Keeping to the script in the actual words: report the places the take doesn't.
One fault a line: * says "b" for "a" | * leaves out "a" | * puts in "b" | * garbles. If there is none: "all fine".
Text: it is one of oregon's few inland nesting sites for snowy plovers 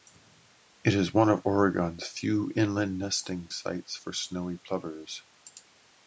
all fine